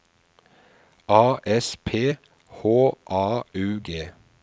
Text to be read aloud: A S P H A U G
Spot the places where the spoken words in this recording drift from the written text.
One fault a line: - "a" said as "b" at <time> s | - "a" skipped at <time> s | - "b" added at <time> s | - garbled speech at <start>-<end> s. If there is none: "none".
none